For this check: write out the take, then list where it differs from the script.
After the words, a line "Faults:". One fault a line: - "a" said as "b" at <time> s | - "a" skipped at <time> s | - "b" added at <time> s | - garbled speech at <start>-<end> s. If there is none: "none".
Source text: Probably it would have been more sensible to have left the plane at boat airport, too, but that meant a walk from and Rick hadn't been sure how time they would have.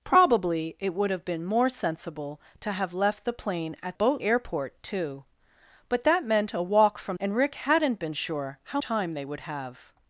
Probably it would have been more sensible to have left the plane at boat airport, too, but that meant a walk from and Rick hadn't been sure how time they would have.
Faults:
none